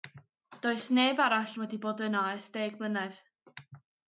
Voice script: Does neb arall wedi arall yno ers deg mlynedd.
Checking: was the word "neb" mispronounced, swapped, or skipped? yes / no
no